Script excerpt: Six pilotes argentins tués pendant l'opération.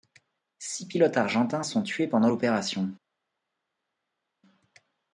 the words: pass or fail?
fail